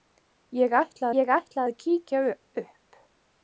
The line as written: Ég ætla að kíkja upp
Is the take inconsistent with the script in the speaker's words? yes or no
yes